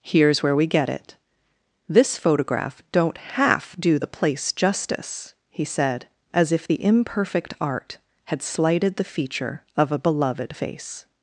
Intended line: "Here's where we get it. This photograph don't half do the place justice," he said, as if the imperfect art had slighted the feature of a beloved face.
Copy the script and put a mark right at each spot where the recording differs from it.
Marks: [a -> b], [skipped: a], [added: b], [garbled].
"Here's where we get it. This photograph don't half do the place justice," he said, as if the imperfect art had slighted the feature of a beloved face.